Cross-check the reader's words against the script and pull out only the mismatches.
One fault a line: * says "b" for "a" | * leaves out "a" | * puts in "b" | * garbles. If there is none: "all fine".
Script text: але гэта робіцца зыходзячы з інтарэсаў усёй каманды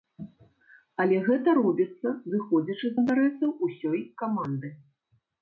all fine